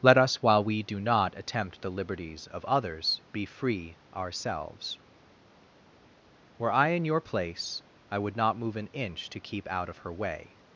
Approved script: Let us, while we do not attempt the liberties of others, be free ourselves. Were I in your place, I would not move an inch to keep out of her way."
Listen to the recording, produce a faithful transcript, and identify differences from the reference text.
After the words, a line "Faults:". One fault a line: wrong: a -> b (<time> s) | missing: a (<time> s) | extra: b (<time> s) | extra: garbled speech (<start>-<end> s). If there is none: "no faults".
Let us, while we do not attempt the liberties of others, be free ourselves. Were I in your place, I would not move an inch to keep out of her way."
Faults:
no faults